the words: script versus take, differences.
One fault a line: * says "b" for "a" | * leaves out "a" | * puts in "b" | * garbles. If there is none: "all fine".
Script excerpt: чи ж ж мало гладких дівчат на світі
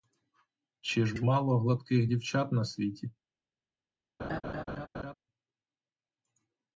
all fine